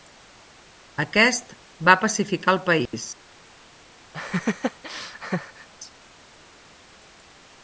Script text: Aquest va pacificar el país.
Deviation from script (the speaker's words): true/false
false